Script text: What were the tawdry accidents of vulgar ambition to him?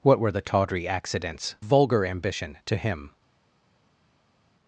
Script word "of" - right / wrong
wrong